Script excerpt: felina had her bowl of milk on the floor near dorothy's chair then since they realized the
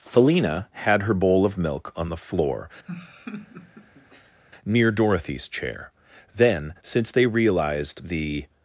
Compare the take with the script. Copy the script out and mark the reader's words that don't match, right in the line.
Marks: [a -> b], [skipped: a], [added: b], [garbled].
felina had her bowl of milk on the floor near dorothy's chair then since they realized the